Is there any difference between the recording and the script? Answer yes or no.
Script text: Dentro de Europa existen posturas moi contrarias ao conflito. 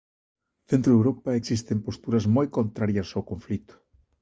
no